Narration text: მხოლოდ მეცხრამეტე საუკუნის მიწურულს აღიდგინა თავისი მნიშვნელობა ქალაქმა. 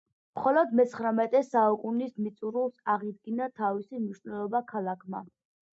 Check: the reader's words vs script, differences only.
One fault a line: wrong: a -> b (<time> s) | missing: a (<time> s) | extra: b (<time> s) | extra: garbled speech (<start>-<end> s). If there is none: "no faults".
no faults